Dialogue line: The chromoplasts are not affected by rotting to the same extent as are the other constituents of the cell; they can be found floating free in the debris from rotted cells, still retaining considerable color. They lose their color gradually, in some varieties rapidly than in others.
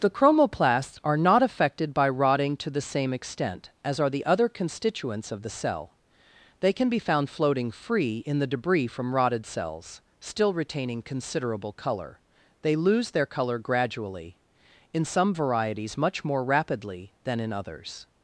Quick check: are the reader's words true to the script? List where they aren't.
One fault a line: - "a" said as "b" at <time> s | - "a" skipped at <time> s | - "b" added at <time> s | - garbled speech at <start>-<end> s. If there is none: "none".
- "much more" added at 16.0 s